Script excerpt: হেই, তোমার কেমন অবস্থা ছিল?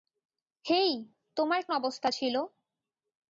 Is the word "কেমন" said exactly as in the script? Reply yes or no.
no